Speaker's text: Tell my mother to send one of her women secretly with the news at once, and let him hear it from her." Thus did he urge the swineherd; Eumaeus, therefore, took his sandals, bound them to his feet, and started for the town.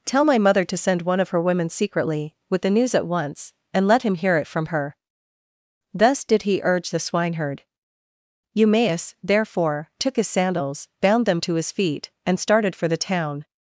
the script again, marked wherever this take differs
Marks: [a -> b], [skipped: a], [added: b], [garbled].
Tell my mother to send one of her women secretly with the news at once, and let him hear it from her." Thus did he urge the swineherd; Eumaeus, therefore, took his sandals, bound them to his feet, and started for the town.